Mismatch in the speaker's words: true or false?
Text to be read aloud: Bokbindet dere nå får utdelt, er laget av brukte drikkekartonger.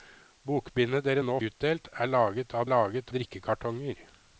true